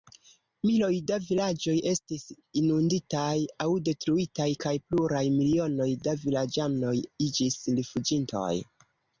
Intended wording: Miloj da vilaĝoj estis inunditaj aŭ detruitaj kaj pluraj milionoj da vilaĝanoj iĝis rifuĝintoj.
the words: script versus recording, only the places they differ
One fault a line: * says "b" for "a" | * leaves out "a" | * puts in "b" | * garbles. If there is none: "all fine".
all fine